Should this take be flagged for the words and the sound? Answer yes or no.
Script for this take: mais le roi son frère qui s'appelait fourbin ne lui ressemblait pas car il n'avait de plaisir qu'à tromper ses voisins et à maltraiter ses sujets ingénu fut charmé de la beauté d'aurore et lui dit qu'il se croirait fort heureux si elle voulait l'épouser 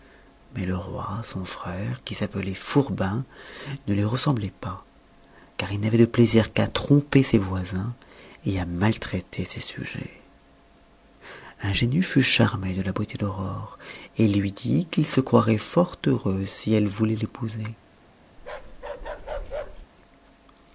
yes